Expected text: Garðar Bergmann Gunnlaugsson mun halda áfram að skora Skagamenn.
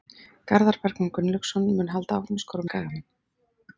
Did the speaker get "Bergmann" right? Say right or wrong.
right